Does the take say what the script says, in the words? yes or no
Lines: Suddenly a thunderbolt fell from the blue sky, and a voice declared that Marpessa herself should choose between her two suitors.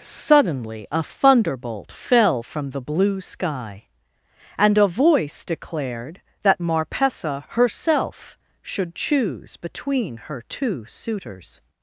yes